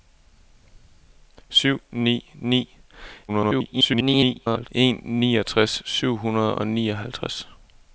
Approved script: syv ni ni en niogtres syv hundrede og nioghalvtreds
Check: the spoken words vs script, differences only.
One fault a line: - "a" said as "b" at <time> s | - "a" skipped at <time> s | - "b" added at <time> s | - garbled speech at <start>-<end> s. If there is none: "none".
- garbled speech at 3.3-4.7 s